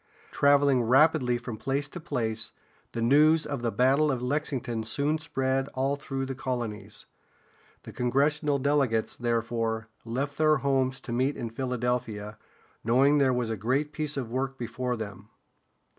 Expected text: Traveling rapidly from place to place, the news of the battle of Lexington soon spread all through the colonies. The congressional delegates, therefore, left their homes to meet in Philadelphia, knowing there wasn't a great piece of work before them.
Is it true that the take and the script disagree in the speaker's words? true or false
true